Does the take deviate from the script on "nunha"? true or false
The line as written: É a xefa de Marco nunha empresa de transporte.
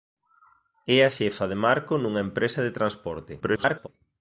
false